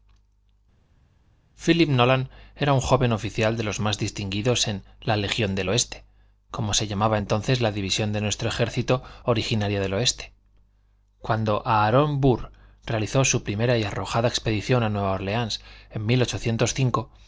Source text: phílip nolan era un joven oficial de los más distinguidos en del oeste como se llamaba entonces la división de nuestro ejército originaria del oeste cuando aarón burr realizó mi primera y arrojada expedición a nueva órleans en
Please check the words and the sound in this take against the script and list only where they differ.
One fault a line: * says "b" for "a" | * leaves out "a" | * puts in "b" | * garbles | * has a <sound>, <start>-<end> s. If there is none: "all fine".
* puts in "la legión"
* says "su" for "mi"